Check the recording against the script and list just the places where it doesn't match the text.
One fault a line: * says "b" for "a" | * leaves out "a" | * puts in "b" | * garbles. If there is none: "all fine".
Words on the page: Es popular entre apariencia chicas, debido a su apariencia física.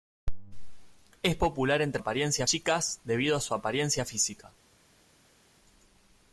all fine